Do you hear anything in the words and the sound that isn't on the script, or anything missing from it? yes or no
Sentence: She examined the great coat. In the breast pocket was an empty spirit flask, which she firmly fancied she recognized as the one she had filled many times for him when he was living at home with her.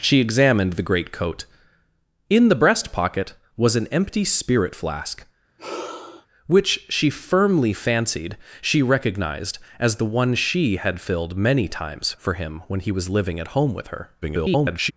yes